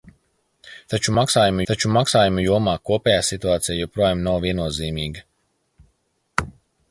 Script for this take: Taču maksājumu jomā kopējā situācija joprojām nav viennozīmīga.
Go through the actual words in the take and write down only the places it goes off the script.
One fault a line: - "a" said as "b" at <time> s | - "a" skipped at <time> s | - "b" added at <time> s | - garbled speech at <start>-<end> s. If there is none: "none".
- "taču maksājumu" added at 1.7 s